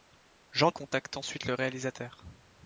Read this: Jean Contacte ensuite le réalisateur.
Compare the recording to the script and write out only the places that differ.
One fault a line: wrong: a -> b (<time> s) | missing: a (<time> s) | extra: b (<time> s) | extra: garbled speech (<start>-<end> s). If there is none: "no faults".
no faults